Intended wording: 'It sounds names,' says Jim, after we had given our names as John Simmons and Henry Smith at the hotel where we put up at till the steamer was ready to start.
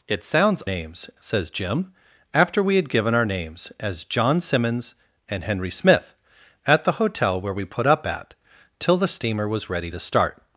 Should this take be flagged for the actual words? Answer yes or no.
no